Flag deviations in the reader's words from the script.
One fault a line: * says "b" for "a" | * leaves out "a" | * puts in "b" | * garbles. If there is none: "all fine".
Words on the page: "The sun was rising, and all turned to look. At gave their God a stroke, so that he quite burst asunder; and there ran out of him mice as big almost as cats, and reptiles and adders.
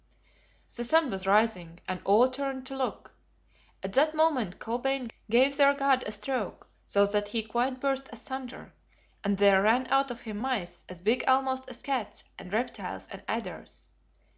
* puts in "that moment Kolbein"